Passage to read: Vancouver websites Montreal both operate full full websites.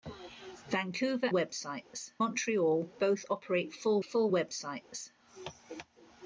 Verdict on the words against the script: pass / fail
pass